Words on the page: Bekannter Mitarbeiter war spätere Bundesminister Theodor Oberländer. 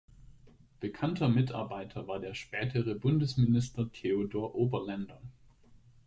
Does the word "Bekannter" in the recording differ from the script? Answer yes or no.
no